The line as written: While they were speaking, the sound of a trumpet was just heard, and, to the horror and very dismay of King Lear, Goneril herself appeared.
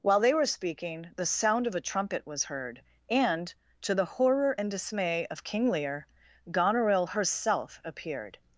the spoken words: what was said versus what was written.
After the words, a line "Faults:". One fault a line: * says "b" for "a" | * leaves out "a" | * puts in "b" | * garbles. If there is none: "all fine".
While they were speaking, the sound of a trumpet was heard, and, to the horror and dismay of King Lear, Goneril herself appeared.
Faults:
* leaves out "just"
* leaves out "very"